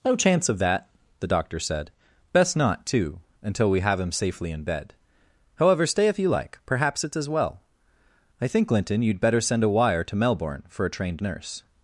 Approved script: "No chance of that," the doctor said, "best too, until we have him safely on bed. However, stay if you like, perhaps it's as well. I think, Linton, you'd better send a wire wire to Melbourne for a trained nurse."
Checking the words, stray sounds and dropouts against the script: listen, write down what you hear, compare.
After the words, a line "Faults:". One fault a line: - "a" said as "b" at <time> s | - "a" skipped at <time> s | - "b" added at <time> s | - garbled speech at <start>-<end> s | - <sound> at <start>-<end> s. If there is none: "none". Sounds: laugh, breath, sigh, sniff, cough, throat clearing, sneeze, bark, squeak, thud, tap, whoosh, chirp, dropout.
"No chance of that," the doctor said, "best not, too, until we have him safely in bed. However, stay if you like, perhaps it's as well. I think, Linton, you'd better send a wire to Melbourne for a trained nurse."
Faults:
- "not" added at 2.6 s
- "on" said as "in" at 4.5 s
- "wire" skipped at 10.0 s